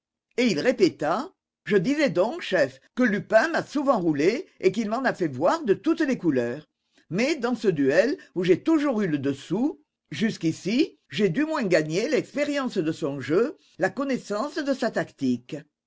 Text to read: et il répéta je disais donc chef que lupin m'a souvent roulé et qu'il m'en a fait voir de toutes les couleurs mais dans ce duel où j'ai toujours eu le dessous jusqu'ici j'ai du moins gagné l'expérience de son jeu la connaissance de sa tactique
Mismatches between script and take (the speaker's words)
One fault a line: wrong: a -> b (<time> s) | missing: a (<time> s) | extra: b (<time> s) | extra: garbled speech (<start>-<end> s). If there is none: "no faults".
no faults